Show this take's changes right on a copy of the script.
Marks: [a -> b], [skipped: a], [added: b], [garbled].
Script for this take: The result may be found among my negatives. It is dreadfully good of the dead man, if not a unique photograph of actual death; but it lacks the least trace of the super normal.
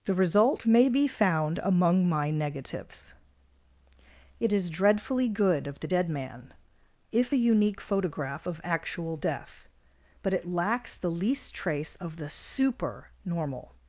The result may be found among my negatives. It is dreadfully good of the dead man, if [skipped: not] a unique photograph of actual death; but it lacks the least trace of the super normal.